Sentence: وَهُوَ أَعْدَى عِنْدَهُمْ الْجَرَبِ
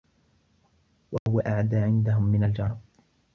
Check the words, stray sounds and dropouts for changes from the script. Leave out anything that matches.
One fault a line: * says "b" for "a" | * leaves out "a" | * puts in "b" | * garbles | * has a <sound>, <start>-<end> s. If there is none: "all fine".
* has a dropout, 1.2-1.3 s
* puts in "مِنْ"